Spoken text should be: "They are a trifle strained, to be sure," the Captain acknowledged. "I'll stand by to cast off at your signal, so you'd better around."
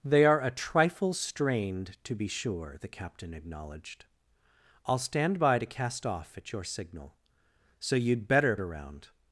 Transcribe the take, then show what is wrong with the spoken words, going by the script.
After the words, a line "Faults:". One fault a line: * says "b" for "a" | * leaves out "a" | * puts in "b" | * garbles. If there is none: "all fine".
"They are a trifle strained, to be sure," the Captain acknowledged. "I'll stand by to cast off at your signal, so you'd better around."
Faults:
all fine